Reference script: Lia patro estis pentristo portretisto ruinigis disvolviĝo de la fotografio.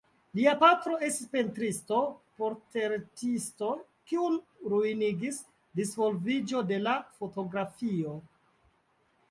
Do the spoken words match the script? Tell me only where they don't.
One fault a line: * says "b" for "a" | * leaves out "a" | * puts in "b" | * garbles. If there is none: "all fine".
* puts in "kiun"